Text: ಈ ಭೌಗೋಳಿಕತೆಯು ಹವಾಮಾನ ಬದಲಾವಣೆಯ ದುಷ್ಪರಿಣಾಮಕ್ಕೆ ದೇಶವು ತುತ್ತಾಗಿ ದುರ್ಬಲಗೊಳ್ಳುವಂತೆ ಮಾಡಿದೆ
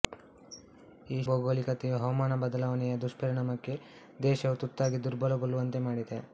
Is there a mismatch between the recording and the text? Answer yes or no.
no